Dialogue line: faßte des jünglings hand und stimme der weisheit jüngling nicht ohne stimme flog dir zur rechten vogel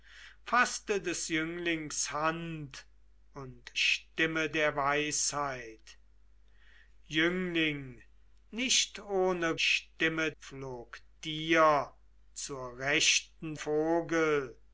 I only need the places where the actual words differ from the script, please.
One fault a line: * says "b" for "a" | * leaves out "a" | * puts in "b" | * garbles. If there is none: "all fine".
all fine